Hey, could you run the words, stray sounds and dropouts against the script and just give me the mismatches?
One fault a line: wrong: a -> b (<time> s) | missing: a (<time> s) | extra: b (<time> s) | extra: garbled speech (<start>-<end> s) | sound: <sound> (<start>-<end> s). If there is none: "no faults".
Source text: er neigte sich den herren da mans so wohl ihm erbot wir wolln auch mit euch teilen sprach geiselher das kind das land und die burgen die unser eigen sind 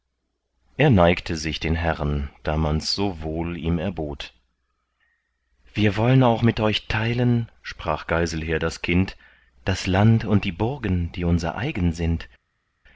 no faults